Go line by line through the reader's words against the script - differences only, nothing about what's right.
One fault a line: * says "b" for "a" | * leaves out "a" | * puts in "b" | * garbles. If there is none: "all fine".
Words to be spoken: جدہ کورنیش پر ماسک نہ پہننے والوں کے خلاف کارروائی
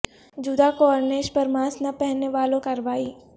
* leaves out "کے خلاف"